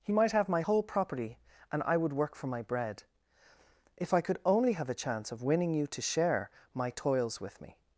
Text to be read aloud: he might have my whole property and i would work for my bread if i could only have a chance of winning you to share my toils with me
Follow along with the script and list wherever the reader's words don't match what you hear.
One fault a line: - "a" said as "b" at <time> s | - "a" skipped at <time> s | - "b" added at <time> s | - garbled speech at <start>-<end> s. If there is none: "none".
none